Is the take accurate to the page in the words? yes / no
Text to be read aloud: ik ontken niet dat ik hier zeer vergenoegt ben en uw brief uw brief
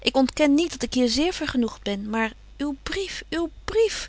no